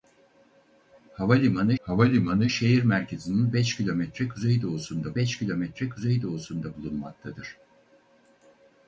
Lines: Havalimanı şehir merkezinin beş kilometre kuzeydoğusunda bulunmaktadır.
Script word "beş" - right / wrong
right